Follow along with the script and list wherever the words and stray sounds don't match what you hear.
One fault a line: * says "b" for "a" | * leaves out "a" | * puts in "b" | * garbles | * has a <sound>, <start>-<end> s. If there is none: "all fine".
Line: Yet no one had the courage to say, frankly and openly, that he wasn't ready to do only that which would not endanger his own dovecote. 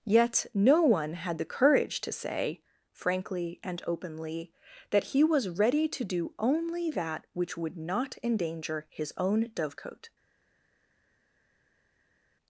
* says "was" for "wasn't"